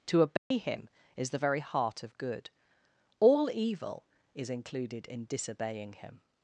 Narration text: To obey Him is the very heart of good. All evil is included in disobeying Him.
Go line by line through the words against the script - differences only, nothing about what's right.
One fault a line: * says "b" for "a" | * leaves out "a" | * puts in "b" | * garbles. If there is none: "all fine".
all fine